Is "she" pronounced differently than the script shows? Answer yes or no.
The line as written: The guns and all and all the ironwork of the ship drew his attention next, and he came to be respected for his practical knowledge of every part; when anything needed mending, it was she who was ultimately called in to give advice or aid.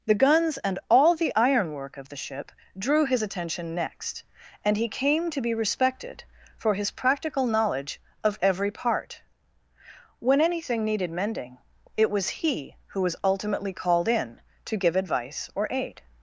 yes